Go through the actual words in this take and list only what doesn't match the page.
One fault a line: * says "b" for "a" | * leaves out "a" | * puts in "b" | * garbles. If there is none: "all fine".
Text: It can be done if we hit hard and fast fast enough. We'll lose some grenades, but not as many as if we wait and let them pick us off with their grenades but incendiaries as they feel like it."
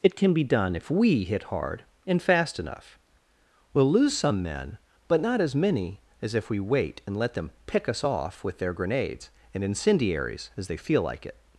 * leaves out "fast"
* says "men" for "grenades"
* says "and" for "but"